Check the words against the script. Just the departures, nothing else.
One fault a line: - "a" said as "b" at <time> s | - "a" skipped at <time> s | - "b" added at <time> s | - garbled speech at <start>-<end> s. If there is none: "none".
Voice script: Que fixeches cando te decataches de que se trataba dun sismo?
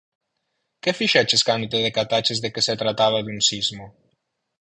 none